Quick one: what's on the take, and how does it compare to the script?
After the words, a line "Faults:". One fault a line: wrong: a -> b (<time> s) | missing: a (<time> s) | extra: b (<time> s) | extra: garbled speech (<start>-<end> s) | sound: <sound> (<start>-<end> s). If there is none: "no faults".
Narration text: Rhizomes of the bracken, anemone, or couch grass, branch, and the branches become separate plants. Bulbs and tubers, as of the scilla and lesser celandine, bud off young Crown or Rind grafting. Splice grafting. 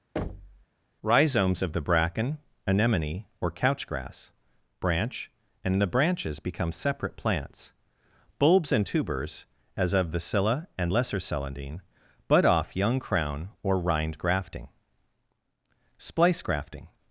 Rhizomes of the bracken, anemone, or couch grass, branch, and the branches become separate plants. Bulbs and tubers, as of the scilla and lesser celandine, bud off young Crown or Rind grafting. Splice grafting.
Faults:
sound: thud (0.2-0.7 s)